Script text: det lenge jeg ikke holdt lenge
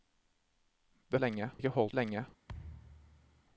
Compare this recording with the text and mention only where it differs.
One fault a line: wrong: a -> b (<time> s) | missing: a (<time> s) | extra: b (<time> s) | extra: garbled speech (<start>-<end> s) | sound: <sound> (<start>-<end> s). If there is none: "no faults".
sound: thud (2.5-3.4 s)